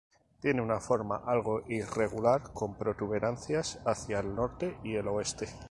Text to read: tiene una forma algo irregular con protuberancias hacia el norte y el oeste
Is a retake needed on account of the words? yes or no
no